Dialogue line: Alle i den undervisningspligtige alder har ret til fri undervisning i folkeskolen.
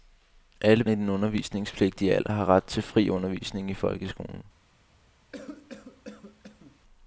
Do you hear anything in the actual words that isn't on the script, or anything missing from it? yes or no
no